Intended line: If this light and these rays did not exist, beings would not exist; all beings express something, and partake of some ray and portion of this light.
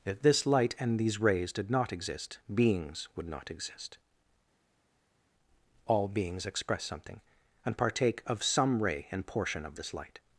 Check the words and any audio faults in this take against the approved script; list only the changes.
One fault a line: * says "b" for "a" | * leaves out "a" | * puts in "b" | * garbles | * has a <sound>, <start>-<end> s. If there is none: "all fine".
all fine